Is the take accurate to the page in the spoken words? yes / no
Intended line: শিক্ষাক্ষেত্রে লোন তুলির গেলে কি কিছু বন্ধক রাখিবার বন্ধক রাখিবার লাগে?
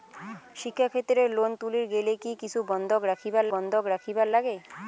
yes